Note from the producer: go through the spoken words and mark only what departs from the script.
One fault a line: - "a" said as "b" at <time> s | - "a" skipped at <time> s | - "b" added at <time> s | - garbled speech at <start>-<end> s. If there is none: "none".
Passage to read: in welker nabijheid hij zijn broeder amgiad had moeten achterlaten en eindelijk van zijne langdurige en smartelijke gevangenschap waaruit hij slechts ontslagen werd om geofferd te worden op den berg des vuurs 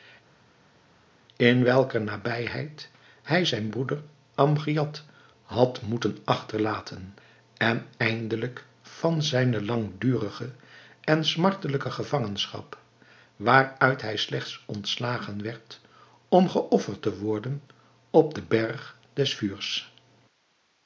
none